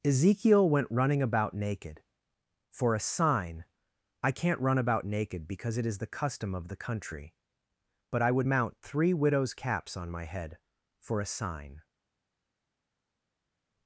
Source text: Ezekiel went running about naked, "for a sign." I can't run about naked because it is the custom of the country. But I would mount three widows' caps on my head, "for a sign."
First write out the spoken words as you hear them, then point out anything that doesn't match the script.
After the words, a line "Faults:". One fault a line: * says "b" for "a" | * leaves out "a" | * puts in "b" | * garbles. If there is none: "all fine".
Ezekiel went running about naked, "for a sign." I can't run about naked because it is the custom of the country. But I would mount three widows' caps on my head, "for a sign."
Faults:
all fine